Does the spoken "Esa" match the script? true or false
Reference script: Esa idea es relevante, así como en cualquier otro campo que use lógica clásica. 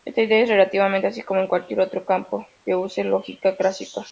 false